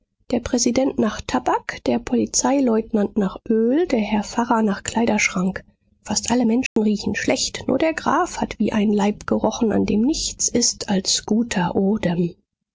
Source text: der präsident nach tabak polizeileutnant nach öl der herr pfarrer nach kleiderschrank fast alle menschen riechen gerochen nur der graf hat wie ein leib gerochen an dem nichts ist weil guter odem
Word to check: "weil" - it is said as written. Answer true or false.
false